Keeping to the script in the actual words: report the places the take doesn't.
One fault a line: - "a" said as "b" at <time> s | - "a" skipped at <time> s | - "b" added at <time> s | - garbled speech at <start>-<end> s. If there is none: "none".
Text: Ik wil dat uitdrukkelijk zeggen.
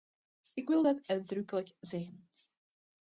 none